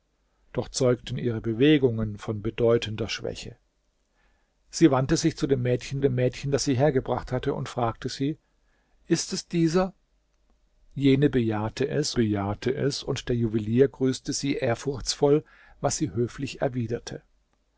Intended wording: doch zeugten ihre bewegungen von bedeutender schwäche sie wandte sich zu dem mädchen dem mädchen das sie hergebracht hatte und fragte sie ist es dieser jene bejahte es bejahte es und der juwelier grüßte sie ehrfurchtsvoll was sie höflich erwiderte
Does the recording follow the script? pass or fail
pass